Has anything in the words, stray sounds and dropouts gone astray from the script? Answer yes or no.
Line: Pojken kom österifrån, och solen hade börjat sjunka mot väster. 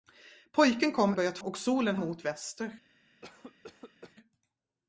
yes